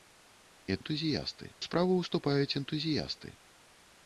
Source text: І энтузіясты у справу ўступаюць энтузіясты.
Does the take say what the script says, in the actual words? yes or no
yes